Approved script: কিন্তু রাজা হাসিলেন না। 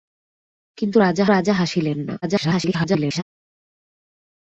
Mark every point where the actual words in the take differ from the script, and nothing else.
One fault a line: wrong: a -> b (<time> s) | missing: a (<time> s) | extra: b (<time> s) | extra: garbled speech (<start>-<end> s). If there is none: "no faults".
extra: রাজা (1.3 s)
extra: garbled speech (2.2-3.2 s)